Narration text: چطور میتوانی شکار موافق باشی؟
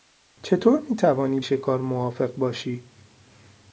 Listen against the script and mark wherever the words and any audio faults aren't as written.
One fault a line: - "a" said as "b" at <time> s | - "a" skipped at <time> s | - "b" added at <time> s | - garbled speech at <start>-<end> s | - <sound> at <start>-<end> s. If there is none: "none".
none